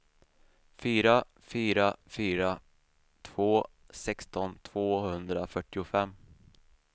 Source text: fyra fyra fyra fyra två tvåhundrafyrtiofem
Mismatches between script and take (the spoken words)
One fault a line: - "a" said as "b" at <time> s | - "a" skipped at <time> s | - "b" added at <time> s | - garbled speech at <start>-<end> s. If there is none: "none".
- "fyra två" said as "två sexton" at 3.2 s